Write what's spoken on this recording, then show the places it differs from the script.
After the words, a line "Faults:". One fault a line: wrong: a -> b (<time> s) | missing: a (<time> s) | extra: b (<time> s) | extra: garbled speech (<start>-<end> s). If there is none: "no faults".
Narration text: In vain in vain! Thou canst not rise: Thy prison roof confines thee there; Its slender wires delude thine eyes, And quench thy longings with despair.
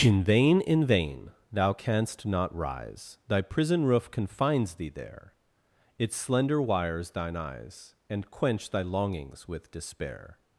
In vain in vain! Thou canst not rise: Thy prison roof confines thee there; Its slender wires thine eyes, And quench thy longings with despair.
Faults:
missing: delude (7.1 s)